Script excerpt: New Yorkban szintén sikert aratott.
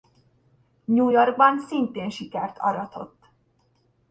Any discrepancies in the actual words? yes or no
no